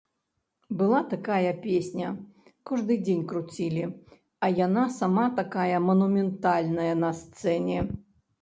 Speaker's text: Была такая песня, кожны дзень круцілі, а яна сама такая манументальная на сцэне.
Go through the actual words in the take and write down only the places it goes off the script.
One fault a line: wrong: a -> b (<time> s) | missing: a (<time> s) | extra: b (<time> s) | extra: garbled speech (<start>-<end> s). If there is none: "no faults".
no faults